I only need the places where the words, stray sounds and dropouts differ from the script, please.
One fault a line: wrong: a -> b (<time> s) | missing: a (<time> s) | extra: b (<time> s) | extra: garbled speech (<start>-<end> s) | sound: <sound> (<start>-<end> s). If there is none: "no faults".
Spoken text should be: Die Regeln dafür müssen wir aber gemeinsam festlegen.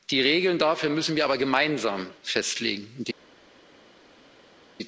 no faults